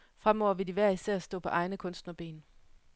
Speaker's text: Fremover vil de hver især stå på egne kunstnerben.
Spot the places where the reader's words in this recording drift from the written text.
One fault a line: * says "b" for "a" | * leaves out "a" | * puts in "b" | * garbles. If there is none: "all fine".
all fine